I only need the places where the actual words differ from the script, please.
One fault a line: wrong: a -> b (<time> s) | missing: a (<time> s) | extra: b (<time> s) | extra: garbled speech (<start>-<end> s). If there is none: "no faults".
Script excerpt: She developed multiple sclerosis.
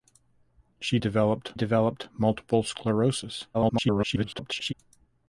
extra: developed (1.5 s)
extra: garbled speech (3.5-4.7 s)